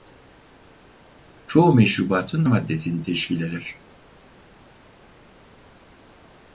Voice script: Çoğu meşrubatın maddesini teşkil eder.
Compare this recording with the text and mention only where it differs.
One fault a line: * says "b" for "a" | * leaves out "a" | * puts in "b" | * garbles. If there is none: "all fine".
all fine